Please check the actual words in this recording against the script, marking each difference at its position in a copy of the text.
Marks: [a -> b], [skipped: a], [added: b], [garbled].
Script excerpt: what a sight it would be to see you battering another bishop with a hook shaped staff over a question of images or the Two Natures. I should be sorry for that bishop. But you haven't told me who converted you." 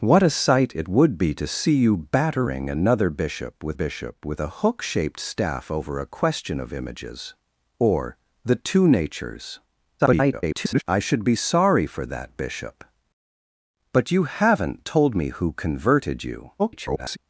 what a sight it would be to see you battering another bishop with [added: bishop with] a hook shaped staff over a question of images or the Two Natures. [garbled] I should be sorry for that bishop. But you haven't told me who converted you." [garbled]